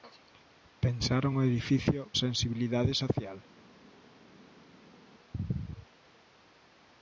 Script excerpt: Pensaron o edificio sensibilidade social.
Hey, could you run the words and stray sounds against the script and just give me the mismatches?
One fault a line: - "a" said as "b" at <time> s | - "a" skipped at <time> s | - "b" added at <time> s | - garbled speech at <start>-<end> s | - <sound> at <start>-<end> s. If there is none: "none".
none